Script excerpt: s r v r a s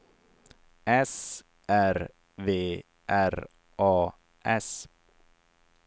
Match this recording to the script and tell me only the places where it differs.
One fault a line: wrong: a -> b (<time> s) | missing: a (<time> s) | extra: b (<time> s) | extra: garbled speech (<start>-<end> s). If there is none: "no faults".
no faults